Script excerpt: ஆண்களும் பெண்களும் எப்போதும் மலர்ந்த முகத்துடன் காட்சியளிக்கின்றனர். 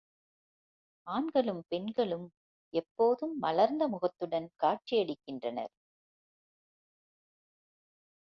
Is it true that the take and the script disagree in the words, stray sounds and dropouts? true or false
false